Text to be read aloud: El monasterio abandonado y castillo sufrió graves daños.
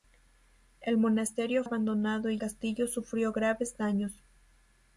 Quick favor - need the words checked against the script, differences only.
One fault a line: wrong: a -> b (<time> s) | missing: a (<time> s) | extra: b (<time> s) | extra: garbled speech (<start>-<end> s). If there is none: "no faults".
no faults